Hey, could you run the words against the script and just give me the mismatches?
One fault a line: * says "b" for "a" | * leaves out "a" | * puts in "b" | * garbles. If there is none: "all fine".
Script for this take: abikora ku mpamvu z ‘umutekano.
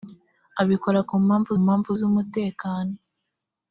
* puts in "mpamvu"